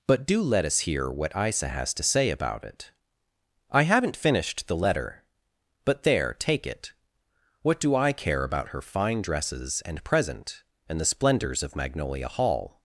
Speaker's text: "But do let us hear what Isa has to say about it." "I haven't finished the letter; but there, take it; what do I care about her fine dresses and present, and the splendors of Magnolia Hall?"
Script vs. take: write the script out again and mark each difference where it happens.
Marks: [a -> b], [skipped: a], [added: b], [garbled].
"But do let us hear what Isa has to say about it." "I haven't finished the letter; but there, take it; what do I care about her fine dresses and present, and the splendors of Magnolia Hall?"